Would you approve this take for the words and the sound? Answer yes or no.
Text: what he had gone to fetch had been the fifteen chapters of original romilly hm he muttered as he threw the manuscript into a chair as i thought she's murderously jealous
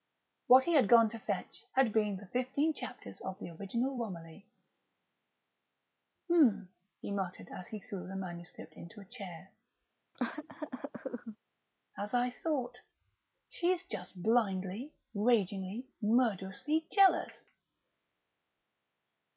no